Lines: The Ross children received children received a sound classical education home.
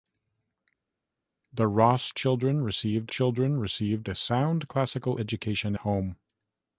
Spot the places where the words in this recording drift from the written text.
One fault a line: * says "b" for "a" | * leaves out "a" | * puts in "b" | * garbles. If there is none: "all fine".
all fine